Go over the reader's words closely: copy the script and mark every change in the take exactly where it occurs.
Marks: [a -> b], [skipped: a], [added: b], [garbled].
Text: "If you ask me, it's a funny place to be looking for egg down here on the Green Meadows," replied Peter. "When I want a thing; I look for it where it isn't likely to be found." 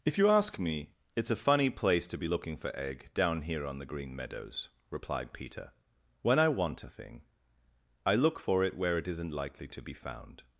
"If you ask me, it's a funny place to be looking for egg down here on the Green Meadows," replied Peter. "When I want a thing; I look for it where it isn't likely to be found."